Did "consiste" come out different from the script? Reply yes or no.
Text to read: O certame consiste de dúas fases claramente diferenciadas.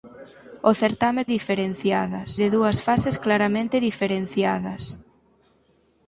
yes